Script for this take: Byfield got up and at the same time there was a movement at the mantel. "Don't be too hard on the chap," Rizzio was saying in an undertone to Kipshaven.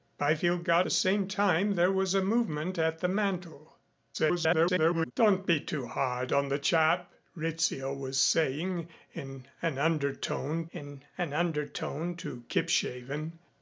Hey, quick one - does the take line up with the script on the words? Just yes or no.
no